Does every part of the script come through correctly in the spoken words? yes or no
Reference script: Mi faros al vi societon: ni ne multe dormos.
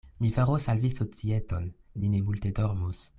yes